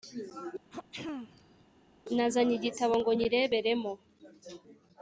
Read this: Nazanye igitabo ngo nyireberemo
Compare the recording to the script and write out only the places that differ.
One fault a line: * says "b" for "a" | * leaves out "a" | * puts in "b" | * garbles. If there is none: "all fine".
all fine